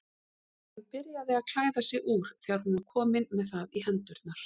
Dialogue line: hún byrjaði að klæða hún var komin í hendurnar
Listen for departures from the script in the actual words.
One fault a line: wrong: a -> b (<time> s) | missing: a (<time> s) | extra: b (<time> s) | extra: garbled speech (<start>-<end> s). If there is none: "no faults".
extra: sig úr þegar (1.9 s)
extra: með það (3.4 s)